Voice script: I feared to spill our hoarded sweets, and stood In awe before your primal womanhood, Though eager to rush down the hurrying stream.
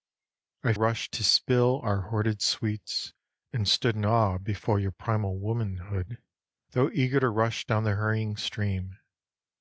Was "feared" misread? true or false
true